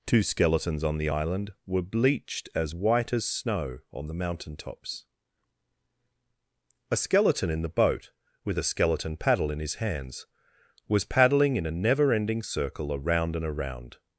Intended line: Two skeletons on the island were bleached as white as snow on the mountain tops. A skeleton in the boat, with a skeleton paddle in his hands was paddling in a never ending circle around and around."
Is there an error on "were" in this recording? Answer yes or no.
no